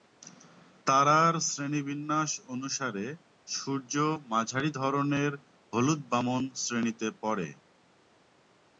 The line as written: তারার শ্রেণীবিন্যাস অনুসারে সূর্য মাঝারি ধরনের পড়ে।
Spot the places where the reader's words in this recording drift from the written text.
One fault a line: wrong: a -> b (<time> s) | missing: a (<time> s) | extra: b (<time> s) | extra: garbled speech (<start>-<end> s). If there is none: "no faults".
extra: হলুদ বামন শ্রেণীতে (5.7 s)